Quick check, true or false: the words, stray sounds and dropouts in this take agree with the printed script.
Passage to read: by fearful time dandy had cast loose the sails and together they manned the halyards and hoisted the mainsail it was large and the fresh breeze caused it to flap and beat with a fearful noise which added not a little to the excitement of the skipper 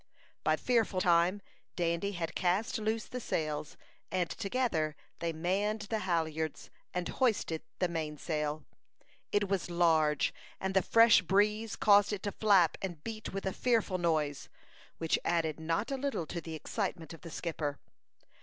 true